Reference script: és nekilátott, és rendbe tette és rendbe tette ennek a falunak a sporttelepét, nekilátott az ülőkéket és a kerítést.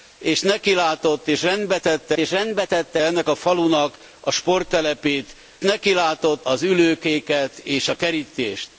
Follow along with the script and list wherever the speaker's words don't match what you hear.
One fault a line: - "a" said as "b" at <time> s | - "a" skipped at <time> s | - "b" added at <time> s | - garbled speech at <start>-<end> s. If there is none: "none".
none